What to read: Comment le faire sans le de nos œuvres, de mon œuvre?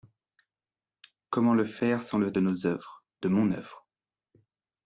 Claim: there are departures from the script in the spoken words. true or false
false